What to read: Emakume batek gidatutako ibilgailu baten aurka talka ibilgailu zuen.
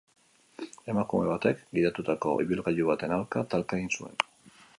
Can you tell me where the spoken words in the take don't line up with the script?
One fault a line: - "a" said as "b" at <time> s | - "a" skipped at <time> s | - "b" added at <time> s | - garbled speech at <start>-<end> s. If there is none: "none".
- "ibilgailu" said as "egin" at 3.8 s